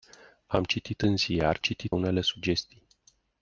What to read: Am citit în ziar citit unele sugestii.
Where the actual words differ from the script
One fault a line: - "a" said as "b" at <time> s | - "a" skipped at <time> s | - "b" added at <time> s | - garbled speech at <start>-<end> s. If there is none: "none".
none